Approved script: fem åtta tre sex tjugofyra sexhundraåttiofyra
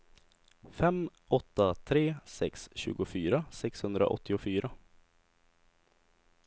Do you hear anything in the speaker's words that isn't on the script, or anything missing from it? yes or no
no